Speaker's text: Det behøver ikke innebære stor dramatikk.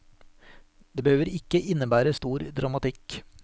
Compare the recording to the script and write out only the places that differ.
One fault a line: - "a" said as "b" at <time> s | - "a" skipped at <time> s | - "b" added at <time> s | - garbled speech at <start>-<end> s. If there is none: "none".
none